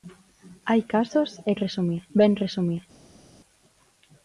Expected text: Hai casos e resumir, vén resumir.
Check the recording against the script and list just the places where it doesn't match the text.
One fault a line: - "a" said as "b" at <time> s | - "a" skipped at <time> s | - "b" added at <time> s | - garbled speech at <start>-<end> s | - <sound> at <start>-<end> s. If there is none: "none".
none